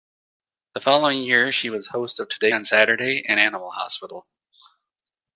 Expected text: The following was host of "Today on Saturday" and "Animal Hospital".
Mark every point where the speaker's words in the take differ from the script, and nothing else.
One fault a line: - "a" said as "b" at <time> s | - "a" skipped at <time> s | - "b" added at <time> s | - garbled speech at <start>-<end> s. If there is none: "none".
- "year she" added at 1.2 s